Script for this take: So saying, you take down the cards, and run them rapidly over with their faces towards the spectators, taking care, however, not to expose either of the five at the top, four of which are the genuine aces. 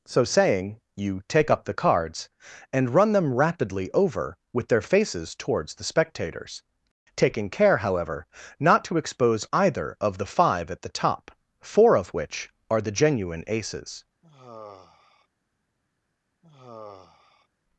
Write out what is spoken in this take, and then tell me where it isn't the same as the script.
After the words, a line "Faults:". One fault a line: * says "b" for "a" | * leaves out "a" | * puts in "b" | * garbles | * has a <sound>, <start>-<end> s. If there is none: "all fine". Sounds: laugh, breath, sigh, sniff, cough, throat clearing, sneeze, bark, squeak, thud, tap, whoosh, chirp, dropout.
So saying, you take up the cards, and run them rapidly over with their faces towards the spectators, taking care, however, not to expose either of the five at the top, four of which are the genuine aces.
Faults:
* says "up" for "down"
* has a sigh, 14.2-15.3 s
* has a sigh, 16.4-17.5 s